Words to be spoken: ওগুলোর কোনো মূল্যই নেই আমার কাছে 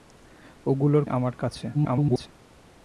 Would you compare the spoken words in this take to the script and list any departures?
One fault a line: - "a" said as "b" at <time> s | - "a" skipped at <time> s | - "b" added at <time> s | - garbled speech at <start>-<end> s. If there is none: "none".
- "কোনো মূল্যই নেই" skipped at 1.0 s
- garbled speech at 1.7-2.3 s